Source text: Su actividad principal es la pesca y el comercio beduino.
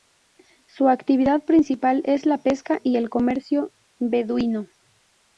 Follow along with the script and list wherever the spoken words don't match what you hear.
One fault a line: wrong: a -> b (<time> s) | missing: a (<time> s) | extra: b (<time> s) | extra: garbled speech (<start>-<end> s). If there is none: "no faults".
no faults